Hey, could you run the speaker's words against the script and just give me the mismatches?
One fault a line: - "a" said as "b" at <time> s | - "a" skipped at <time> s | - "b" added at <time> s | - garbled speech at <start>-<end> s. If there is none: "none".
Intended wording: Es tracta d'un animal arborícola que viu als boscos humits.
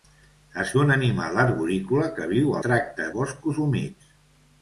- "tracta" skipped at 0.7 s
- "als" said as "tracta" at 2.6 s